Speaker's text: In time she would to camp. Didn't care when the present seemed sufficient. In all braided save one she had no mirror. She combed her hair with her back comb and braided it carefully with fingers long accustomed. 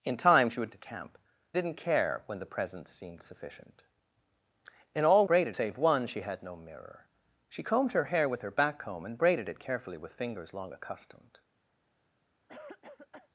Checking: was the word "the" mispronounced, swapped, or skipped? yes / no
no